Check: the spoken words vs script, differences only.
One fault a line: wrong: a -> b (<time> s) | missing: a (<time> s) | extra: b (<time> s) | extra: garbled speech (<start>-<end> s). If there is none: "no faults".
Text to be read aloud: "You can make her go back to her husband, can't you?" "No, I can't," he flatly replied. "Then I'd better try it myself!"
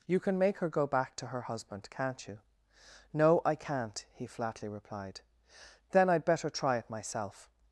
no faults